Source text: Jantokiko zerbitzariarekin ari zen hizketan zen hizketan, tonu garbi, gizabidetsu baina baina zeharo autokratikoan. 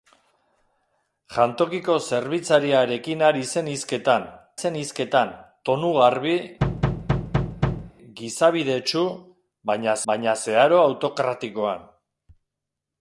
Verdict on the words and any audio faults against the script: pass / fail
fail